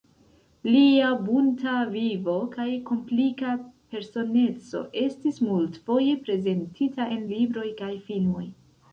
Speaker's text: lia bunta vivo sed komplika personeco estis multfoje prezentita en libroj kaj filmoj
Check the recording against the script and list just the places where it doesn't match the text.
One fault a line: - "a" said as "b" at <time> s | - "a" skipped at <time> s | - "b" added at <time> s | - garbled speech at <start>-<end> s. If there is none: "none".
- "sed" said as "kaj" at 2.5 s